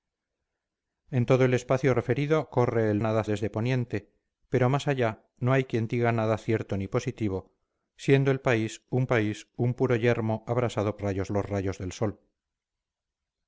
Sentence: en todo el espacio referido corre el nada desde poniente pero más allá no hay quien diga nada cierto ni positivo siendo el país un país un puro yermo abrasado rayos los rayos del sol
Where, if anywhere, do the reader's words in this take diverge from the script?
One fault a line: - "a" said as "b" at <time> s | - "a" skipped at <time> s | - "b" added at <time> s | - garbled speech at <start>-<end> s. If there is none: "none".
none